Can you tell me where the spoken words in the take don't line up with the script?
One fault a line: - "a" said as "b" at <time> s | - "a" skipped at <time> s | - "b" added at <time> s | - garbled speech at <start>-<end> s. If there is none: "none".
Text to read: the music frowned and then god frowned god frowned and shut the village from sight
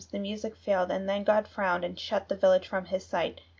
- "frowned" said as "failed" at 0.6 s
- "god frowned" skipped at 1.8 s
- "his" added at 2.8 s